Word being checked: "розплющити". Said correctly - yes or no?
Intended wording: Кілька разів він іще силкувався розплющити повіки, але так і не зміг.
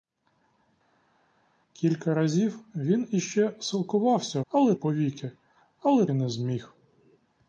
no